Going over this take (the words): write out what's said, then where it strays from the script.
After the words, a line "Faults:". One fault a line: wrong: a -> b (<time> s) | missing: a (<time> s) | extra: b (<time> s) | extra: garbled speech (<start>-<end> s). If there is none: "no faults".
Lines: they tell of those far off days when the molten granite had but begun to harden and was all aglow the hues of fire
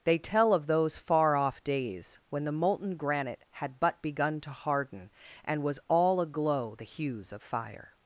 they tell of those far off days when the molten granite had but begun to harden and was all aglow the hues of fire
Faults:
no faults